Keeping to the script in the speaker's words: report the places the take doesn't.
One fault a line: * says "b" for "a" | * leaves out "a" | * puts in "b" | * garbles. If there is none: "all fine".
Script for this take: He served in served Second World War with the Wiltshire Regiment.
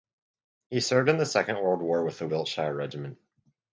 * says "the" for "served"